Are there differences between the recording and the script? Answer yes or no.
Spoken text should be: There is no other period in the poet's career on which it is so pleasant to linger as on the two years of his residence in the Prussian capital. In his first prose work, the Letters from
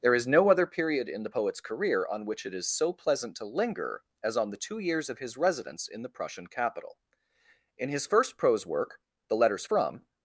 no